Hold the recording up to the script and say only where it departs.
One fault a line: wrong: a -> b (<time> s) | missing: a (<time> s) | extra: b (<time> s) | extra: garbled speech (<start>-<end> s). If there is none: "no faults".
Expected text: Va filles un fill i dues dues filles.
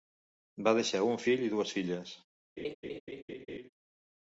wrong: filles -> deixar (0.8 s)
missing: dues (1.8 s)